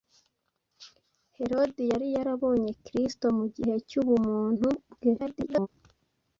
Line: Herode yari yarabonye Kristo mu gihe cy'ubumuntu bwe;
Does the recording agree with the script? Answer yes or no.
no